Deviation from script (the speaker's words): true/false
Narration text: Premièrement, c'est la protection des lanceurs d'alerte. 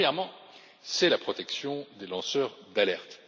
false